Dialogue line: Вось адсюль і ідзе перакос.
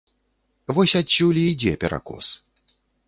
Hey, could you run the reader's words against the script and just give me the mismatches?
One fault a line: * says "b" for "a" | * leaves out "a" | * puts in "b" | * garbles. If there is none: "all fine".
all fine